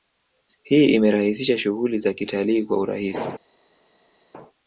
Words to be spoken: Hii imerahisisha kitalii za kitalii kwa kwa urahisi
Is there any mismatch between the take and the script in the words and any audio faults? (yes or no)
yes